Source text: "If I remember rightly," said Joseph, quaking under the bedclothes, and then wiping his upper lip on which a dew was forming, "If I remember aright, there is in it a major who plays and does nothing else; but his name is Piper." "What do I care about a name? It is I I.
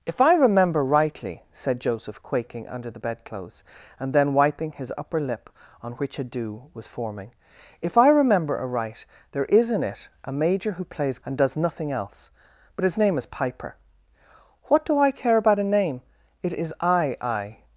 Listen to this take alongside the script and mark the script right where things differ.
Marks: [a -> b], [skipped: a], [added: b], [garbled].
"If I remember rightly," said Joseph, quaking under the bedclothes, and then wiping his upper lip on which a dew was forming, "If I remember aright, there is in it a major who plays and does nothing else; but his name is Piper." "What do I care about a name? It is I I.